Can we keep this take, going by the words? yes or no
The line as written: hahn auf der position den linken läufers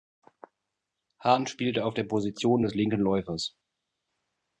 no